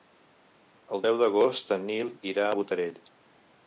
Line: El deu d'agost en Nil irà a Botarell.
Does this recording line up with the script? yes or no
yes